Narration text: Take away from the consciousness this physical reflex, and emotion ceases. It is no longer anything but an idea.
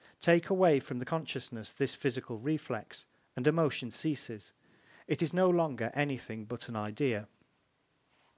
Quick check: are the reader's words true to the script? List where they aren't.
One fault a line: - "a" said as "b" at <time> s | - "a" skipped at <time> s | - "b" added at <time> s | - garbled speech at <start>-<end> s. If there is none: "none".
none